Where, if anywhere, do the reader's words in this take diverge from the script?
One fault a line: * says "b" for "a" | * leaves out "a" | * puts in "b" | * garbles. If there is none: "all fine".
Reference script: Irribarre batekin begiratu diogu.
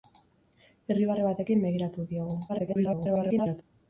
* garbles